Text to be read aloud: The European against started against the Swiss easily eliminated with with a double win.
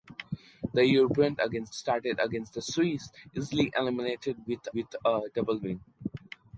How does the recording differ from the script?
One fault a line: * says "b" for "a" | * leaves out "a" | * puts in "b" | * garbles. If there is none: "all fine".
all fine